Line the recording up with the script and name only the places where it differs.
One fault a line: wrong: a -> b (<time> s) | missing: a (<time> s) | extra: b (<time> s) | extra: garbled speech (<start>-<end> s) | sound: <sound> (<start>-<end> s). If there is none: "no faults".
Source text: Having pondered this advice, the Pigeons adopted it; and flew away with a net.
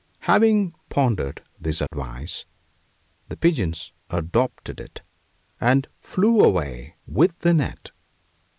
sound: dropout (1.9-1.9 s)
wrong: a -> the (7.4 s)